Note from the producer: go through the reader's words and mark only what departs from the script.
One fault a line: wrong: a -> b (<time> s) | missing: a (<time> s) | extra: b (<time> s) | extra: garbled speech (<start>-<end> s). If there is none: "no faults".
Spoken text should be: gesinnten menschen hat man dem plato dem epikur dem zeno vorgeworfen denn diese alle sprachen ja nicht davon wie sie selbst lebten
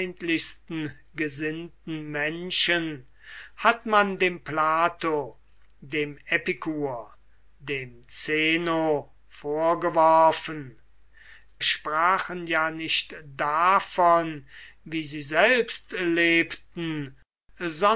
missing: denn diese alle (10.8 s)